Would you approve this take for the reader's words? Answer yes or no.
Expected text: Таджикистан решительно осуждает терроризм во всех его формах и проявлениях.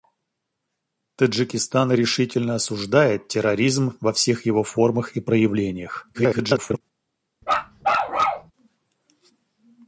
no